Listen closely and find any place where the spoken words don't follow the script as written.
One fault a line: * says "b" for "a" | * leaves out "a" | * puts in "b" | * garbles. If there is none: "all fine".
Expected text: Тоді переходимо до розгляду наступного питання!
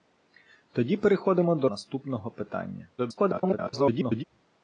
* leaves out "розгляду"
* garbles